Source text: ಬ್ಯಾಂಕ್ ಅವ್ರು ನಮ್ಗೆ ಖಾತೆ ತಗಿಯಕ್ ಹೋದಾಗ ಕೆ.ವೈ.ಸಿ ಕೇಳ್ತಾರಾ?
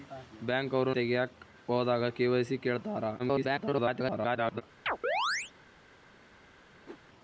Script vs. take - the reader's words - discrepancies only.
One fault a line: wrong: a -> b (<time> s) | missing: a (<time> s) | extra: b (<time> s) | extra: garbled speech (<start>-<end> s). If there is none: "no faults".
missing: ನಮ್ಗೆ ಖಾತೆ (0.9 s)
extra: garbled speech (3.2-4.6 s)